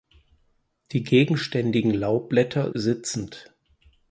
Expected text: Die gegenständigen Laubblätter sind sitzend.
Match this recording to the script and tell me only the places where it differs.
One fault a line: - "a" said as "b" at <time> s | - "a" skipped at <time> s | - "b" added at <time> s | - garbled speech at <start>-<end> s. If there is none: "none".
- "sind" skipped at 2.7 s